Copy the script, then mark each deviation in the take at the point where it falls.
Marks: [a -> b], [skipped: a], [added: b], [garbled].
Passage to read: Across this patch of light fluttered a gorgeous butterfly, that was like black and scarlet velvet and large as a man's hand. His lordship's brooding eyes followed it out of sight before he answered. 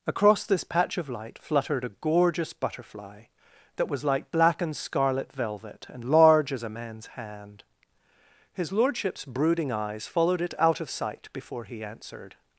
Across this patch of light fluttered a gorgeous butterfly, that was like black and scarlet velvet and large as a man's hand. His lordship's brooding eyes followed it out of sight before he answered.